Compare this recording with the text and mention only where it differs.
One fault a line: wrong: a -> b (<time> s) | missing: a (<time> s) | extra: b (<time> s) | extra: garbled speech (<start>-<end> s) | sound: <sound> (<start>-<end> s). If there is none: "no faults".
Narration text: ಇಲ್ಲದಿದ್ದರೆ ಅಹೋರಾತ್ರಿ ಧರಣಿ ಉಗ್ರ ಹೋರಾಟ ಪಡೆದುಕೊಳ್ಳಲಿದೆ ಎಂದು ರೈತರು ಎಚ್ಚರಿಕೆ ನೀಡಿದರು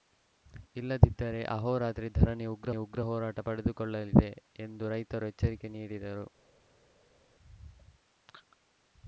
extra: ಉಗ್ರ (2.7 s)